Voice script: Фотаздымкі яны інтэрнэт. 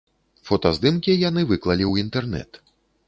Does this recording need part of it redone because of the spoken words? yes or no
yes